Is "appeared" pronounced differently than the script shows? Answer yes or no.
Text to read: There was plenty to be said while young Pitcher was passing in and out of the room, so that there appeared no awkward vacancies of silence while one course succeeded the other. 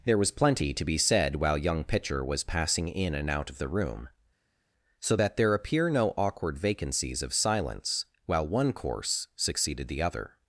yes